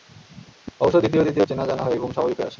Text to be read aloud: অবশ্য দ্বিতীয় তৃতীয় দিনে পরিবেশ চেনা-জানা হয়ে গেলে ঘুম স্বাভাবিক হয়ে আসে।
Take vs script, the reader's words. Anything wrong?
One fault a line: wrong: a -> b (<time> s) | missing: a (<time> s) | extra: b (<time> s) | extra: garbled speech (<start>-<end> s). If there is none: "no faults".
missing: দিনে পরিবেশ (1.5 s)
missing: গেলে (2.0 s)